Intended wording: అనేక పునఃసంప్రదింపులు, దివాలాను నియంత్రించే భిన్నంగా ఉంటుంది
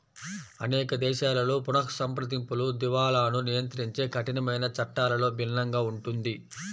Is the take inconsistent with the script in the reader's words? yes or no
yes